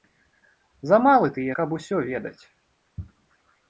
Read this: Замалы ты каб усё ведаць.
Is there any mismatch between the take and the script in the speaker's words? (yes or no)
no